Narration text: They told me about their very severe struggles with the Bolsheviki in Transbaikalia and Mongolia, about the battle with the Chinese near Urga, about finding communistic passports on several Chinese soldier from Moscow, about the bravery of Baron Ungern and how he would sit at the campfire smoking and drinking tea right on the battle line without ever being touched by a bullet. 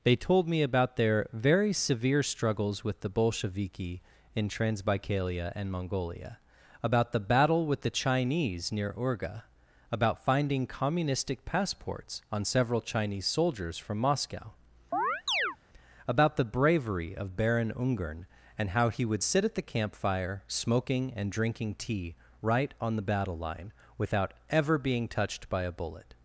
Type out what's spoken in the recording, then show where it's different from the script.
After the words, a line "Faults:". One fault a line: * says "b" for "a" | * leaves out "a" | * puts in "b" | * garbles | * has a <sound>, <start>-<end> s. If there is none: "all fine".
They told me about their very severe struggles with the Bolsheviki in Transbaikalia and Mongolia, about the battle with the Chinese near Urga, about finding communistic passports on several Chinese soldiers from Moscow, about the bravery of Baron Ungern and how he would sit at the campfire smoking and drinking tea right on the battle line without ever being touched by a bullet.
Faults:
* says "soldiers" for "soldier"
* has a chirp, 14.9-15.6 s